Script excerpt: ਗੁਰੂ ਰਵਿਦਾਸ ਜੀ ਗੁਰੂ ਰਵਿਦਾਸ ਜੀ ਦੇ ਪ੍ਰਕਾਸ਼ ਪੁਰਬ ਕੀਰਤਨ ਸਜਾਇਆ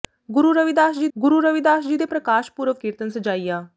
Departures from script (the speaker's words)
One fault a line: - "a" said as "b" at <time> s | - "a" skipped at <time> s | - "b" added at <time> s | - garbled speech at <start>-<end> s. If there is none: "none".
none